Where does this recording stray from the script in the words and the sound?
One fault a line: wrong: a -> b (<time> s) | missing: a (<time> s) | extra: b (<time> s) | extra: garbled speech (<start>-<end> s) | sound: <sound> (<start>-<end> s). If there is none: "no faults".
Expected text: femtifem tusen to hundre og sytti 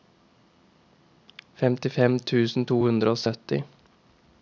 no faults